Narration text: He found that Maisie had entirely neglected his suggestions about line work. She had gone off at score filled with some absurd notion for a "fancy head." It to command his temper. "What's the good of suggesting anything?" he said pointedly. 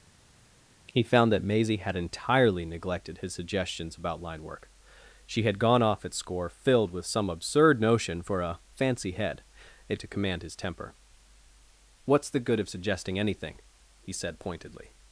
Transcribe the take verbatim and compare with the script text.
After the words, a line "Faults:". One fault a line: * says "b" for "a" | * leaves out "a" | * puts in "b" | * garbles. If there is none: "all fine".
He found that Maisie had entirely neglected his suggestions about line work. She had gone off at score filled with some absurd notion for a "fancy head." It to command his temper. "What's the good of suggesting anything?" he said pointedly.
Faults:
all fine